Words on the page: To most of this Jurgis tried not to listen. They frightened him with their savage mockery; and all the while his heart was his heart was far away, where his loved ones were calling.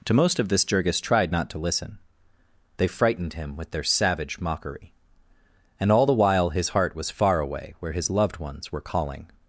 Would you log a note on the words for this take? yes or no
yes